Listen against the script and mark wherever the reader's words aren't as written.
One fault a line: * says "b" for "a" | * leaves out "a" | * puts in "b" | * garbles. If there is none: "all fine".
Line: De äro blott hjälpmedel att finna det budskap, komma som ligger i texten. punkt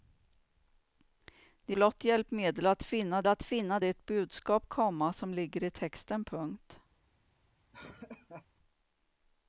* leaves out "äro"
* puts in "att finna"